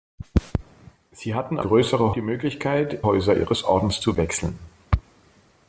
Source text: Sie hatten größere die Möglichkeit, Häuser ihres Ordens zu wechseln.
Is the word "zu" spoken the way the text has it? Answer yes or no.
yes